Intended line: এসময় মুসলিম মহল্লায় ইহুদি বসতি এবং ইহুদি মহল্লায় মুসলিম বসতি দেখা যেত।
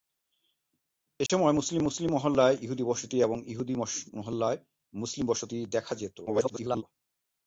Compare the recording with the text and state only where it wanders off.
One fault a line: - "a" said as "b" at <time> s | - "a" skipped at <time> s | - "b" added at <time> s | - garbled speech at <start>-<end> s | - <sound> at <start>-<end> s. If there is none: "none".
- dropout at 1.3-1.3 s
- "মুসলিম" added at 1.8 s
- garbled speech at 6.3-6.8 s